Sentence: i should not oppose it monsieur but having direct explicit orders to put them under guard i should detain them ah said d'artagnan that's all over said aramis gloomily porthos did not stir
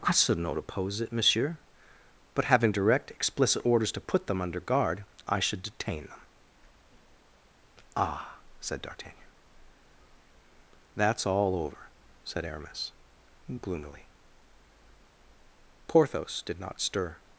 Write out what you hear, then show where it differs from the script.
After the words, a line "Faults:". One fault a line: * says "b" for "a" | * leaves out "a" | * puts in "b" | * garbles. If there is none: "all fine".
i should not oppose it monsieur but having direct explicit orders to put them under guard i should detain them ah said d'artagnan that's all over said aramis gloomily porthos did not stir
Faults:
all fine